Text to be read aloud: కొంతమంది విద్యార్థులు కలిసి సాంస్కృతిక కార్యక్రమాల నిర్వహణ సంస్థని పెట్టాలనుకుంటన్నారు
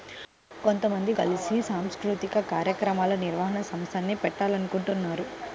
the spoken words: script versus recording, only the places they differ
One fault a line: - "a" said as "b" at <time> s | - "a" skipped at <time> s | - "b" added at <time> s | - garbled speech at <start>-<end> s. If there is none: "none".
- "విద్యార్థులు" skipped at 1.1 s